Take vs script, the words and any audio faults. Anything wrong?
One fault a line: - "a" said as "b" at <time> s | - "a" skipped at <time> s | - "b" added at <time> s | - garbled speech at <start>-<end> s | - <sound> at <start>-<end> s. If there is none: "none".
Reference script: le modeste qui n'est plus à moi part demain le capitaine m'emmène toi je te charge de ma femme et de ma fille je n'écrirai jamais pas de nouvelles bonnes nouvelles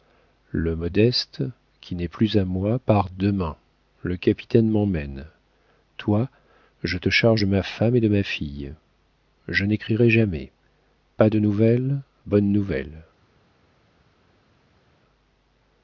none